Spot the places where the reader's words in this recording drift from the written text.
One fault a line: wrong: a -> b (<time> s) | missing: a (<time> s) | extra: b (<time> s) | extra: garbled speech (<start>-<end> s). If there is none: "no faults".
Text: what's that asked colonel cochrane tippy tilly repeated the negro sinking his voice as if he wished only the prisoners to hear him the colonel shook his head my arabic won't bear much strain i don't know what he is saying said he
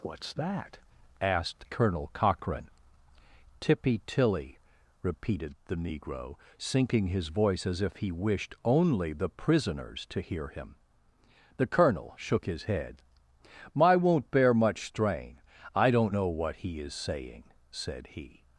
missing: arabic (13.9 s)